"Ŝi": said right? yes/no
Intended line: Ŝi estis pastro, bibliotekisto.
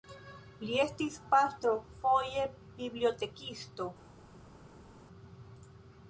no